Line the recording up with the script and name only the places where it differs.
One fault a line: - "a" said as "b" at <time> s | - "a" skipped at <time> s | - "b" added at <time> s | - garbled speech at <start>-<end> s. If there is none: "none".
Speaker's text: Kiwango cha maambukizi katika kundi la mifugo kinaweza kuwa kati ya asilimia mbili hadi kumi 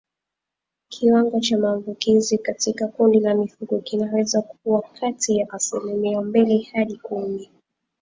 none